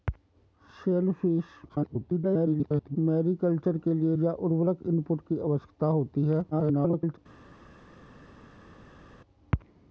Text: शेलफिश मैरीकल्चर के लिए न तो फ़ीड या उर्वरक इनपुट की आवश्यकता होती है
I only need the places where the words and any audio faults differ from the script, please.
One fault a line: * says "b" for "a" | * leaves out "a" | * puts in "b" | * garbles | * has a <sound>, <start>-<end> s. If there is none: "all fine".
* garbles
* leaves out "न तो फ़ीड"
* garbles